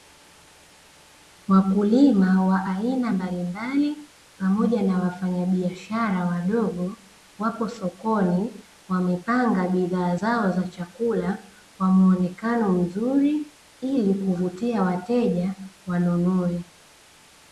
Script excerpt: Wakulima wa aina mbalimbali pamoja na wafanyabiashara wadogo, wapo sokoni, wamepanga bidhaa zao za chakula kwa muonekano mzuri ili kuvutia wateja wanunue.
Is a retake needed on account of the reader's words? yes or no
no